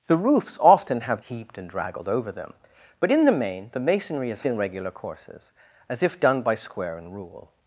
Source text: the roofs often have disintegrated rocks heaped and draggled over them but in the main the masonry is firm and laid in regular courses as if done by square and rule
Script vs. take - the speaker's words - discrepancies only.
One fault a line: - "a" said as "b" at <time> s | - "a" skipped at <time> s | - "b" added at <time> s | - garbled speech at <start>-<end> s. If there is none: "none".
- "disintegrated rocks" skipped at 1.2 s
- "firm and laid" skipped at 4.4 s